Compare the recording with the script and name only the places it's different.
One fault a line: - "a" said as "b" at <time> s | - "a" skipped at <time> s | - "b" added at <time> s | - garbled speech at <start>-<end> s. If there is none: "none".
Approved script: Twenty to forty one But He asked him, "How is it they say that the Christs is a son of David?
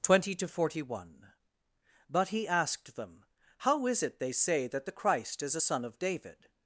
- "him" said as "them" at 2.9 s
- "Christs" said as "Christ" at 4.9 s